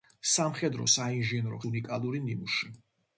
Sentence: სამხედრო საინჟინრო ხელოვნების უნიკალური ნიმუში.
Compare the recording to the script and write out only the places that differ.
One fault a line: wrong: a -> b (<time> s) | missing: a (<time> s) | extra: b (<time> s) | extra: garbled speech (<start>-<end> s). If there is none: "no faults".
missing: ხელოვნების (1.6 s)